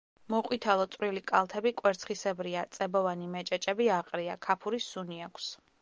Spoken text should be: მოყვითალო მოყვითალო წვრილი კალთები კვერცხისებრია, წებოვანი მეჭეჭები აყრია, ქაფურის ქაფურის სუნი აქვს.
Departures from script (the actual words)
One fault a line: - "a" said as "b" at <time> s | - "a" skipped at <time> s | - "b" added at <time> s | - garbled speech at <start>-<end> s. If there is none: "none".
- "მოყვითალო" skipped at 0.9 s
- "ქაფურის" skipped at 4.9 s